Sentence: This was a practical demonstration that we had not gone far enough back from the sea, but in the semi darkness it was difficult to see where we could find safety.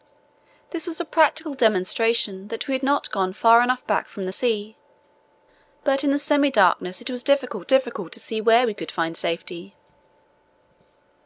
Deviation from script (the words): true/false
true